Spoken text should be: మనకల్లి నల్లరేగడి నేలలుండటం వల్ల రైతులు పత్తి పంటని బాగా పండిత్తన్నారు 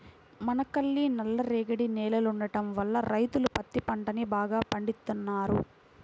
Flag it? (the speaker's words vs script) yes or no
no